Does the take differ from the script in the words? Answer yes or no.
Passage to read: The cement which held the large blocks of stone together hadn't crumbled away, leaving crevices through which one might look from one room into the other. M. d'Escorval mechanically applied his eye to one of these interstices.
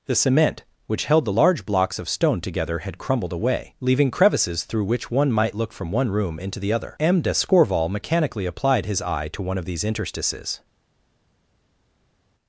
yes